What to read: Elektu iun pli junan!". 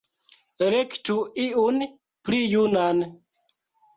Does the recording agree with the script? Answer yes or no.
yes